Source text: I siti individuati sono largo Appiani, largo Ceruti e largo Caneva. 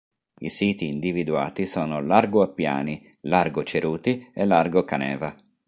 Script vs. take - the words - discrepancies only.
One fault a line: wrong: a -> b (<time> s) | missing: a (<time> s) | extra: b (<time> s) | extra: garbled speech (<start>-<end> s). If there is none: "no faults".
no faults